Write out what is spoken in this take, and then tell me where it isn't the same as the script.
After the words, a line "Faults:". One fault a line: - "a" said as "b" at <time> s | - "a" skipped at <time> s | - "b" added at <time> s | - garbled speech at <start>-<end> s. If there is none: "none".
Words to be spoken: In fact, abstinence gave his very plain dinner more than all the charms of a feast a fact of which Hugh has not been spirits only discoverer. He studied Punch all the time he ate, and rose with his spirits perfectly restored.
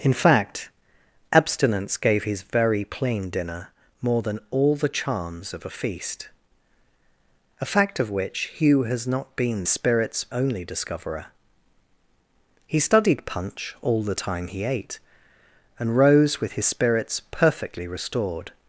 In fact, abstinence gave his very plain dinner more than all the charms of a feast a fact of which Hugh has not been spirits only discoverer. He studied Punch all the time he ate, and rose with his spirits perfectly restored.
Faults:
none